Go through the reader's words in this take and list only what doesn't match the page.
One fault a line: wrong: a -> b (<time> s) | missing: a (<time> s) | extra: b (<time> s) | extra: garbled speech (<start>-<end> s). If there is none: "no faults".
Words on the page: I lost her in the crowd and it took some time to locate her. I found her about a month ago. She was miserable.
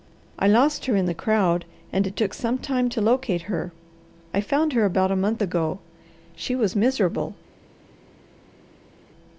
no faults